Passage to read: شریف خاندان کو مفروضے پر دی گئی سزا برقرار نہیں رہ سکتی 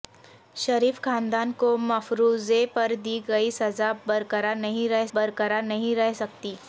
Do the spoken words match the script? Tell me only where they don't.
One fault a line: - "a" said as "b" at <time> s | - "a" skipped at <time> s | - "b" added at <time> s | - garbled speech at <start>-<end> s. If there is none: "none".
- "برقرار نہیں رہ" added at 5.1 s